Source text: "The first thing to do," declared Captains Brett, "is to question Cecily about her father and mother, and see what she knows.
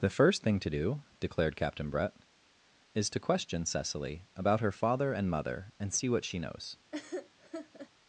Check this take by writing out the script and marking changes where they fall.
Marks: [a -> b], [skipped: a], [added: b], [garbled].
"The first thing to do," declared [Captains -> Captain] Brett, "is to question Cecily about her father and mother, and see what she knows.